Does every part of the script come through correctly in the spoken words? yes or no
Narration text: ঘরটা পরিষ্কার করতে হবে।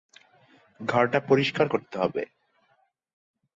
yes